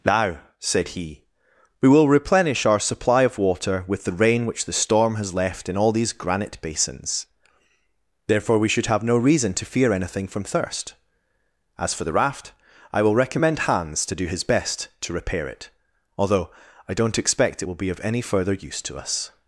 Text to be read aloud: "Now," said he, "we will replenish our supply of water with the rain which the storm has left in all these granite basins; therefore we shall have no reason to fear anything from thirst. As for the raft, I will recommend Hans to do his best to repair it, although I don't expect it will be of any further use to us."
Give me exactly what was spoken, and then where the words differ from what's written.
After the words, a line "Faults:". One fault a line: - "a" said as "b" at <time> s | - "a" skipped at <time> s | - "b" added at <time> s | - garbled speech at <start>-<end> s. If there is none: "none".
"Now," said he, "we will replenish our supply of water with the rain which the storm has left in all these granite basins; therefore we should have no reason to fear anything from thirst. As for the raft, I will recommend Hans to do his best to repair it, although I don't expect it will be of any further use to us."
Faults:
- "shall" said as "should" at 8.7 s